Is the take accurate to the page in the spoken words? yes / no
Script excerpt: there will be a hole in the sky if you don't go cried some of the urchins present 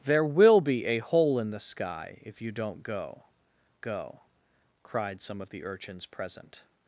no